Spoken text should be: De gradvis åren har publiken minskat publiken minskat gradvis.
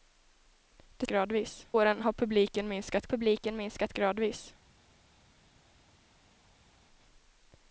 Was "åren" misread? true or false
false